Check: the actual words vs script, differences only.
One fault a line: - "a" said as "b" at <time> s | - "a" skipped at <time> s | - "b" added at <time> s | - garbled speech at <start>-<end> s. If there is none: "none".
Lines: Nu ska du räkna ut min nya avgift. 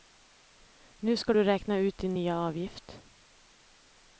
- "min" said as "din" at 2.0 s